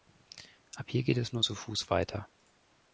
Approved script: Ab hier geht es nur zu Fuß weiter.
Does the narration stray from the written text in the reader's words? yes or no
no